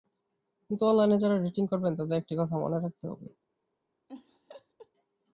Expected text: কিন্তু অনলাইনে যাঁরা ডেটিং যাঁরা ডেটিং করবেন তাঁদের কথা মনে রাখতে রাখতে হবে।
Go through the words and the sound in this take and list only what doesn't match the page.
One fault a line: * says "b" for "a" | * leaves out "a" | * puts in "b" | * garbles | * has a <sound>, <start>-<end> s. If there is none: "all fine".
* leaves out "যাঁরা ডেটিং"
* puts in "একটি"
* leaves out "রাখতে"
* has a laugh, 4.1-4.9 s